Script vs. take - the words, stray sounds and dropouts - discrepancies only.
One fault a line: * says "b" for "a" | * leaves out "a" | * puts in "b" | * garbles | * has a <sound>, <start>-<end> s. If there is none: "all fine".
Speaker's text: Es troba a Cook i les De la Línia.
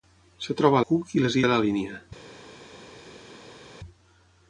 all fine